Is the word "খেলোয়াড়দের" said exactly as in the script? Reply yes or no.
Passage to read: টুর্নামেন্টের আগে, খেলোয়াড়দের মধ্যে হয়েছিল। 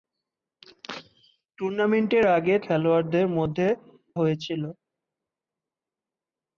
yes